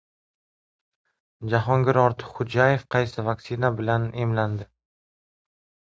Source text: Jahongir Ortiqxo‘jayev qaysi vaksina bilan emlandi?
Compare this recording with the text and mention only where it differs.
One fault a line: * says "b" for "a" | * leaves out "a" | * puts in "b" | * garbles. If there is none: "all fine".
all fine